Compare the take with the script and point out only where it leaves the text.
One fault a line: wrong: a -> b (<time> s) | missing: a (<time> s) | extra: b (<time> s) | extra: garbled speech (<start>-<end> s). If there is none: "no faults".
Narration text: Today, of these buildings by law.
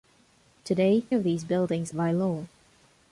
no faults